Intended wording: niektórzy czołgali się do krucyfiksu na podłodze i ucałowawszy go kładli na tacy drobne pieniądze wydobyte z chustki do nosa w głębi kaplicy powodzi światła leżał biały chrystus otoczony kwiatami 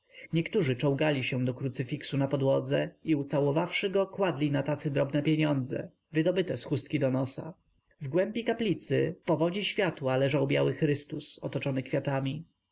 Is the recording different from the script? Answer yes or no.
no